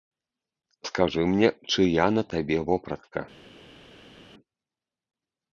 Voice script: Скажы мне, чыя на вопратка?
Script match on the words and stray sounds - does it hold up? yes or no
no